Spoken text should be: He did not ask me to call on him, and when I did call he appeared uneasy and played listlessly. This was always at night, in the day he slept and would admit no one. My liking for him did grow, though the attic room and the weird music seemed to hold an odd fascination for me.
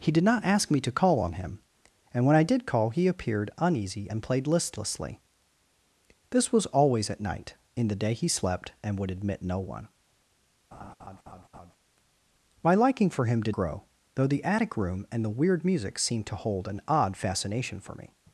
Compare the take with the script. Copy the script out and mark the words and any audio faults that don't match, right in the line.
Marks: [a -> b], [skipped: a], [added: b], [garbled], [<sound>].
He did not ask me to call on him, and when I did call he appeared uneasy and played listlessly. This was always at night, in the day he slept and would admit no one. [laugh] My liking for him did grow, though the attic room and the weird music seemed to hold an odd fascination for me.